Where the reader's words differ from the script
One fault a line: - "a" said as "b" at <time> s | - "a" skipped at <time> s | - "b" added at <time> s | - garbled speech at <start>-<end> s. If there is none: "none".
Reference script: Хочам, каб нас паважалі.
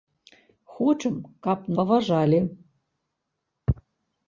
- "нас" skipped at 1.7 s